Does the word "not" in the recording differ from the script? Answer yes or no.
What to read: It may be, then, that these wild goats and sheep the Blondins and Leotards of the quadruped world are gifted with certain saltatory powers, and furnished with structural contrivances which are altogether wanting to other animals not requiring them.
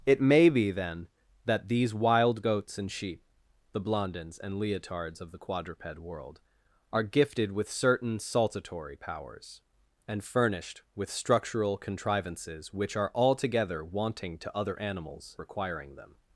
yes